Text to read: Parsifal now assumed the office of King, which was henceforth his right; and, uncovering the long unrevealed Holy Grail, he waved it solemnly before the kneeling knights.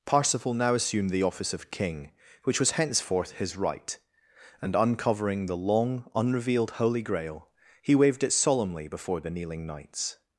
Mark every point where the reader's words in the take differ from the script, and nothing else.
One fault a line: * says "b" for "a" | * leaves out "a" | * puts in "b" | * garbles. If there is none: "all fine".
all fine